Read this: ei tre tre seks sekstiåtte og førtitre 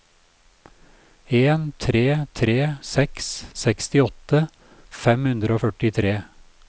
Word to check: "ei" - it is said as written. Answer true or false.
false